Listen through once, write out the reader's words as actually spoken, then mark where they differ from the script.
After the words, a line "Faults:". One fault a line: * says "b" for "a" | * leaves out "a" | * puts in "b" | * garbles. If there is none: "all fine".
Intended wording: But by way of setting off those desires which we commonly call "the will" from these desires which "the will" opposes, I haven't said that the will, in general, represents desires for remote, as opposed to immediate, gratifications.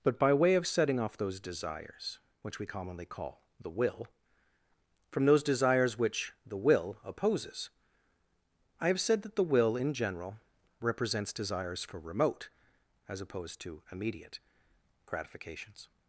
But by way of setting off those desires which we commonly call "the will" from those desires which "the will" opposes, I have said that the will, in general, represents desires for remote, as opposed to immediate, gratifications.
Faults:
* says "those" for "these"
* says "have" for "haven't"